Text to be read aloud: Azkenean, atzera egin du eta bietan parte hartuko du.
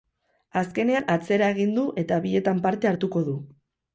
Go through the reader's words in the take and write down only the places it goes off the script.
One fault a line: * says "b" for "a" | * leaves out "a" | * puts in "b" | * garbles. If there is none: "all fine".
all fine